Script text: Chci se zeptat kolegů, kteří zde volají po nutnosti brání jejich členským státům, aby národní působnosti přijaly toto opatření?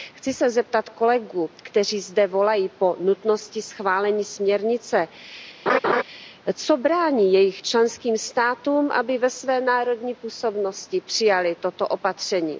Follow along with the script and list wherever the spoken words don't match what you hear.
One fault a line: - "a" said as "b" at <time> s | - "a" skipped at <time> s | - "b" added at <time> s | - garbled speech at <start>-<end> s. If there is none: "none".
- "schválení směrnice co" added at 3.6 s
- "ve své" added at 9.2 s